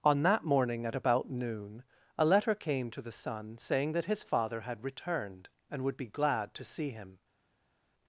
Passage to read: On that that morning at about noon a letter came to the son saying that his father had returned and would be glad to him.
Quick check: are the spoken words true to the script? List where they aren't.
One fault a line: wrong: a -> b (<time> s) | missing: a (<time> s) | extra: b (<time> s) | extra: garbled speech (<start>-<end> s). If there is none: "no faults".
missing: that (0.4 s)
extra: see (6.6 s)